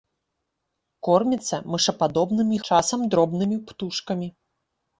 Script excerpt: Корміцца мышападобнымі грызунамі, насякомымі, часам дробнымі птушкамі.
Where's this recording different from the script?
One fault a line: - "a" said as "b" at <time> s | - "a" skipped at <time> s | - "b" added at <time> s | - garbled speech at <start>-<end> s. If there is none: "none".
- "грызунамі насякомымі" skipped at 2.6 s